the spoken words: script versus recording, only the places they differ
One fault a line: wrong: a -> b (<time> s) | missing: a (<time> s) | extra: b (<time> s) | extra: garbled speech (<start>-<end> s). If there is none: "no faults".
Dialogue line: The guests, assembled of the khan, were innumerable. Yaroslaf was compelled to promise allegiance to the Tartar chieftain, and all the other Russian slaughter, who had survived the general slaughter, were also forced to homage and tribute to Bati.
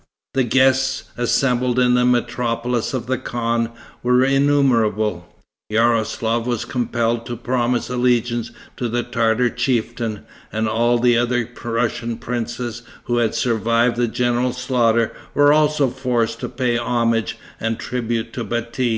extra: in the metropolis (1.8 s)
wrong: slaughter -> princes (12.2 s)
extra: pay (16.5 s)